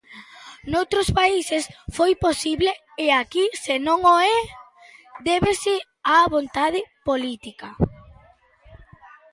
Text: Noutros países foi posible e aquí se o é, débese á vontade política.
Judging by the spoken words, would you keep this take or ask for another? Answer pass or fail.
fail